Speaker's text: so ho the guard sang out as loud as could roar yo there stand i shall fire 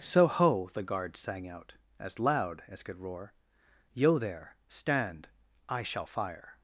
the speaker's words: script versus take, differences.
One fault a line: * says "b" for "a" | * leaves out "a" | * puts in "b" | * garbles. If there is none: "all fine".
all fine